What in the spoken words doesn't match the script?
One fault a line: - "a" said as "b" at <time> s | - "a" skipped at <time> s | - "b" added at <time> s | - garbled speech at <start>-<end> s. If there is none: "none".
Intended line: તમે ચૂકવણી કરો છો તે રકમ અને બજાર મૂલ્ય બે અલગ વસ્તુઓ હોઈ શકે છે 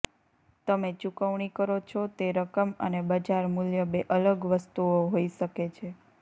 none